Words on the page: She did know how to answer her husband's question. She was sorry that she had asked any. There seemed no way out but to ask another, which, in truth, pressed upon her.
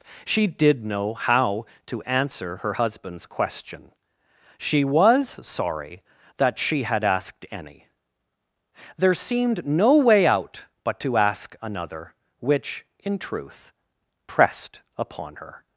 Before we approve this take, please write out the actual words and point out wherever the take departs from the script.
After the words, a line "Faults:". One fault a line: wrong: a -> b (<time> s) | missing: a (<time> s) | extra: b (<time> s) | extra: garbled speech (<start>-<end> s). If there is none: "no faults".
She did know how to answer her husband's question. She was sorry that she had asked any. There seemed no way out but to ask another, which, in truth, pressed upon her.
Faults:
no faults